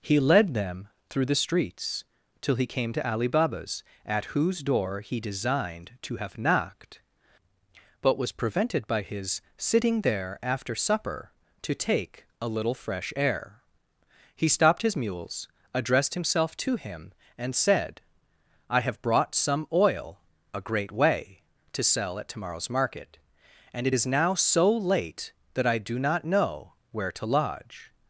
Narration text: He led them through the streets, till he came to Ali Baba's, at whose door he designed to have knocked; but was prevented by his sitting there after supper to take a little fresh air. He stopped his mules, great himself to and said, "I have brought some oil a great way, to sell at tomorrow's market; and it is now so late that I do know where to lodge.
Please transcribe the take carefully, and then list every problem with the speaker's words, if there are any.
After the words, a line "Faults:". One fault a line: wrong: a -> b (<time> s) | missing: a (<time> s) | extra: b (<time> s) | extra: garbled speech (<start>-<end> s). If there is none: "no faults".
He led them through the streets, till he came to Ali Baba's, at whose door he designed to have knocked; but was prevented by his sitting there after supper to take a little fresh air. He stopped his mules, addressed himself to him, and said, "I have brought some oil a great way, to sell at tomorrow's market; and it is now so late that I do not know where to lodge.
Faults:
wrong: great -> addressed (15.7 s)
extra: him (16.8 s)
extra: not (26.0 s)